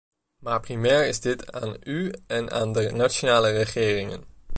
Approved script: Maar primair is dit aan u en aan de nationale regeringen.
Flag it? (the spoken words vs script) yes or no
no